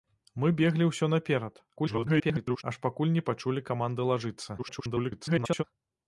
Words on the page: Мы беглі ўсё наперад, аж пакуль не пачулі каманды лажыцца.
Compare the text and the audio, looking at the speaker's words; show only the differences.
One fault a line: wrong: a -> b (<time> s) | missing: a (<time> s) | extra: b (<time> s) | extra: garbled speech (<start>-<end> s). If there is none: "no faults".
extra: garbled speech (1.8-2.6 s)
extra: garbled speech (4.6-5.6 s)